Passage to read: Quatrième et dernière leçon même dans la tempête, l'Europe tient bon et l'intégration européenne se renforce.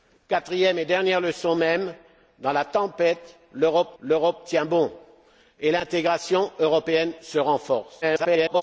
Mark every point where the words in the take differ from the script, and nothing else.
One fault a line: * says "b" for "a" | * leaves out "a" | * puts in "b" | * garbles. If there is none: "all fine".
* puts in "l'Europe"
* garbles